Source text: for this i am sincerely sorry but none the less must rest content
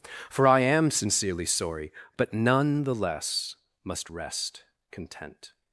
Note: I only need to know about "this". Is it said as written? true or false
false